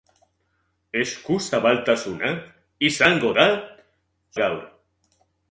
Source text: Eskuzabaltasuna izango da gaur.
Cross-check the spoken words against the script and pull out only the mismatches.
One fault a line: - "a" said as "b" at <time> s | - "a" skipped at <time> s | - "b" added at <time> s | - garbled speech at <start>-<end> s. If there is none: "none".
none